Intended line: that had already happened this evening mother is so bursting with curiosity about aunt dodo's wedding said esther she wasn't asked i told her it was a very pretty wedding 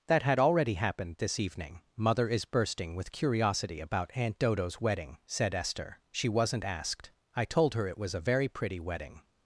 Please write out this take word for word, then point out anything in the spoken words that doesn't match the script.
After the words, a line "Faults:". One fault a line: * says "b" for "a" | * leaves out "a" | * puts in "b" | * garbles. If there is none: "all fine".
that had already happened this evening mother is bursting with curiosity about aunt dodo's wedding said esther she wasn't asked i told her it was a very pretty wedding
Faults:
* leaves out "so"